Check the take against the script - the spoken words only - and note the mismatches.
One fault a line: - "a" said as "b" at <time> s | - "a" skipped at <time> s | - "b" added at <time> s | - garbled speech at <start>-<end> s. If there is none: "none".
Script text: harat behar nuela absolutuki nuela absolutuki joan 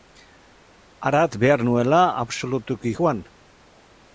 - "nuela absolutuki" skipped at 3.0 s